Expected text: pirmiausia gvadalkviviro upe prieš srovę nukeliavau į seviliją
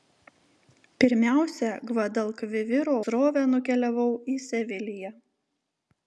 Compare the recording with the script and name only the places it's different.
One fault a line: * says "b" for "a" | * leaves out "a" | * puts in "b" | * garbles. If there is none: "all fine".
* leaves out "upe prieš"